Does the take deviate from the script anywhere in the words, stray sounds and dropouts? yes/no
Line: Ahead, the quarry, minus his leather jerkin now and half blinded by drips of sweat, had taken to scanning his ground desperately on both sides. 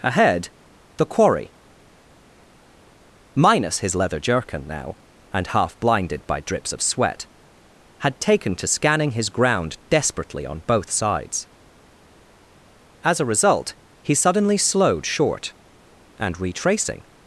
yes